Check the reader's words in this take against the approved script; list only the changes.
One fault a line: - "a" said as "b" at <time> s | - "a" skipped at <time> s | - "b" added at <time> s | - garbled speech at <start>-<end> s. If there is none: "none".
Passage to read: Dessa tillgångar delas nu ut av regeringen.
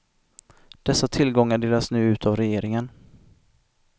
none